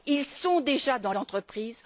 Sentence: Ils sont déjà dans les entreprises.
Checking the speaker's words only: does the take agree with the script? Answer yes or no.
no